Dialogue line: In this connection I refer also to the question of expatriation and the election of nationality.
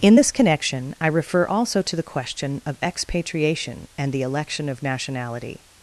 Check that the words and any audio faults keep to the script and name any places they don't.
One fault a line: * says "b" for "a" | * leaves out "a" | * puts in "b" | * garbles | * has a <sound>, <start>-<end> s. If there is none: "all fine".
all fine